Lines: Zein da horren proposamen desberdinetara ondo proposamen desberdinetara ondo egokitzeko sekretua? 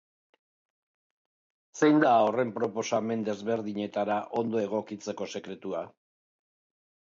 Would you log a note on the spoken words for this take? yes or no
yes